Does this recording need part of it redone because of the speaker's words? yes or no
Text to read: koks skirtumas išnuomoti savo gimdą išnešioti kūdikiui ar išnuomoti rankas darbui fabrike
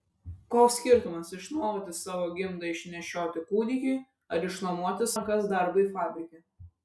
no